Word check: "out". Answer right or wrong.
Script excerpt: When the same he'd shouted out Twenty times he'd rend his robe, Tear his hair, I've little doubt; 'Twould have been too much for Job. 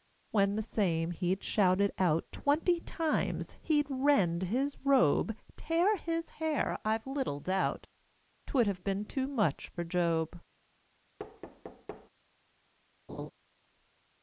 right